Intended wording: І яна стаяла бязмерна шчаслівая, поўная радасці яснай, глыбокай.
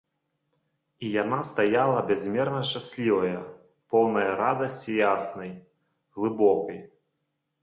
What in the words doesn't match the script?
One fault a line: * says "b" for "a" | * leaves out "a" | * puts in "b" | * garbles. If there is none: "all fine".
all fine